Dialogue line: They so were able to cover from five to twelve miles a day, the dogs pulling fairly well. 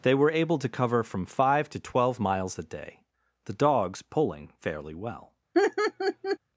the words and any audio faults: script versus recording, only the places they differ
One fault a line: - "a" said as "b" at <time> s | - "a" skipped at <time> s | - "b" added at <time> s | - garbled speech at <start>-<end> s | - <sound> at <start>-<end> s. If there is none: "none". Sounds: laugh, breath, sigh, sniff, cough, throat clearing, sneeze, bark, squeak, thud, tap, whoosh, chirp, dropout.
- "so" skipped at 0.1 s
- laugh at 5.5-6.4 s